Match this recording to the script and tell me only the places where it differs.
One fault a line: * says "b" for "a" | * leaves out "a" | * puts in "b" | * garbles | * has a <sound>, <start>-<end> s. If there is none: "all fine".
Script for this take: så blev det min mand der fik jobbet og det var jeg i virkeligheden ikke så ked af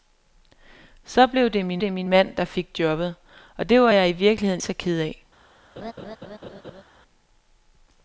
* puts in "det min"
* leaves out "ikke"
* has a laugh, 5.8-6.8 s